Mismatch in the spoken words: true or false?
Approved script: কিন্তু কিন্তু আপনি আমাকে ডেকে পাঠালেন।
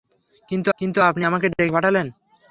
false